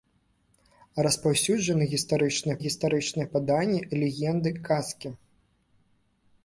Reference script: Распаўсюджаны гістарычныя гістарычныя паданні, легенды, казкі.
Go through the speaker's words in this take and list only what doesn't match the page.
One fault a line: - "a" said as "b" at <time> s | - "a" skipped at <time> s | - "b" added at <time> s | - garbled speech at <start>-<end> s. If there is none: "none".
none